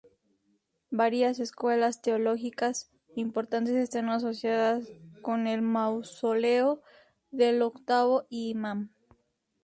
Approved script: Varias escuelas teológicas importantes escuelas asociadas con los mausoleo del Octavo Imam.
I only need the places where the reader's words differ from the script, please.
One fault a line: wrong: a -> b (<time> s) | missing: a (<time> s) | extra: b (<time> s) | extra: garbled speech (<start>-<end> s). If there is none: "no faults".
wrong: escuelas -> están (3.8 s)
wrong: los -> el (5.5 s)